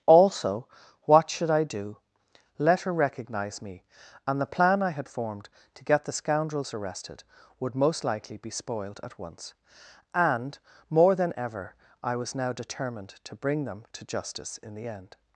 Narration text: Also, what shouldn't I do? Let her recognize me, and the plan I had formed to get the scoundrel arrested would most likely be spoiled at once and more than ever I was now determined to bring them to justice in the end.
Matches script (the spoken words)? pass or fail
fail